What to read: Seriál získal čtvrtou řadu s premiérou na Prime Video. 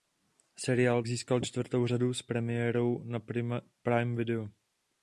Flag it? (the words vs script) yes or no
no